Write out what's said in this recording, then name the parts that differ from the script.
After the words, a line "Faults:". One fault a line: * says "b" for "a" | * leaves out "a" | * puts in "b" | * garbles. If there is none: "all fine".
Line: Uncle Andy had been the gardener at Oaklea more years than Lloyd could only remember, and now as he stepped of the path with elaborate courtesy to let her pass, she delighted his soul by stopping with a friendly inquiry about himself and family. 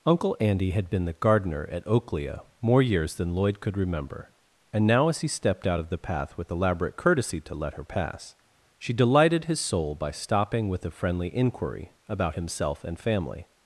Uncle Andy had been the gardener at Oaklea more years than Lloyd could remember, and now as he stepped out of the path with elaborate courtesy to let her pass, she delighted his soul by stopping with a friendly inquiry about himself and family.
Faults:
* leaves out "only"
* puts in "out"